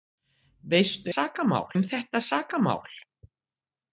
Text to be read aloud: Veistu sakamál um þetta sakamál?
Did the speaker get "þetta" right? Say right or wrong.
right